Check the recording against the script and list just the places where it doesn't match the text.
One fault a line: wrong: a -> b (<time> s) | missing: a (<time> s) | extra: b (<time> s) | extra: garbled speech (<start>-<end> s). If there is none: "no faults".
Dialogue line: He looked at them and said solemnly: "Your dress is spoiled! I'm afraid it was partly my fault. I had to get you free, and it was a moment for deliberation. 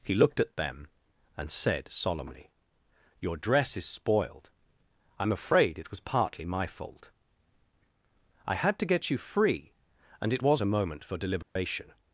no faults